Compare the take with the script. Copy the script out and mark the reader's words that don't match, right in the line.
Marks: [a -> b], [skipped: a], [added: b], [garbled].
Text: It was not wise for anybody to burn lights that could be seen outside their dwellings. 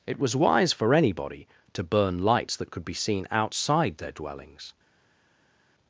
It was [skipped: not] wise for anybody to burn lights that could be seen outside their dwellings.